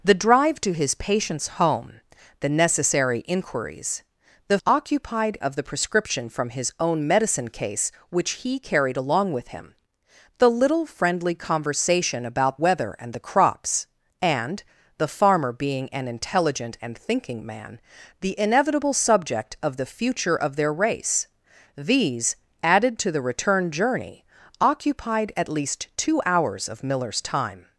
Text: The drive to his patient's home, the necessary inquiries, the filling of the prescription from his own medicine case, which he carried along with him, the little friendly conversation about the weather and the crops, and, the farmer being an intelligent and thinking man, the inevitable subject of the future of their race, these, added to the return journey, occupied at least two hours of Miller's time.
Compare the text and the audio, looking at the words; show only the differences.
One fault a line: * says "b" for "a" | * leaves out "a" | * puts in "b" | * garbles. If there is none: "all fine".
* says "occupied" for "filling"
* leaves out "the"